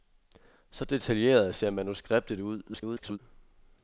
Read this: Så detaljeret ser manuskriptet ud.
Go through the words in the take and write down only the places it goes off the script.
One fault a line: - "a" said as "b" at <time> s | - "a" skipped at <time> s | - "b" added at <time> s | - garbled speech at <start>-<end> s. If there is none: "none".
- garbled speech at 2.7-3.2 s